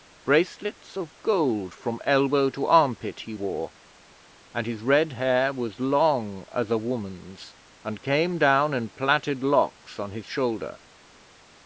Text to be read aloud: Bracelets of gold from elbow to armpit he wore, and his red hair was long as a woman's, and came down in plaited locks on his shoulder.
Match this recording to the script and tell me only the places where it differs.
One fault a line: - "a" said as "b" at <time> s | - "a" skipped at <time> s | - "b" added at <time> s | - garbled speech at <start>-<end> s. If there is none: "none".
none